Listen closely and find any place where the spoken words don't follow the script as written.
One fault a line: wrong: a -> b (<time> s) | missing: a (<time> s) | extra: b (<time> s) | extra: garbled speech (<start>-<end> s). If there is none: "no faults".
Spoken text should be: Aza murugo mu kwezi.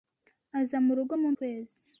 no faults